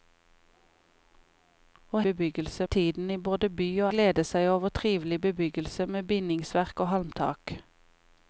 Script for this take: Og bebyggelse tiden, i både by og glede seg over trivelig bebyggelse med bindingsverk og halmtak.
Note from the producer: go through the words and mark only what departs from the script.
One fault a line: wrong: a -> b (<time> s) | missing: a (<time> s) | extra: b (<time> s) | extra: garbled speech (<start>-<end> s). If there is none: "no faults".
no faults